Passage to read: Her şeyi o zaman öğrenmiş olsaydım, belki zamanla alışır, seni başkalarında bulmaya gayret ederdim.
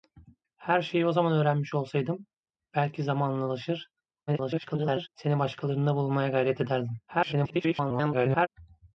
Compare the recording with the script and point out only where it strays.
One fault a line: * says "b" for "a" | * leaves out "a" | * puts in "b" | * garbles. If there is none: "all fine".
* garbles
* garbles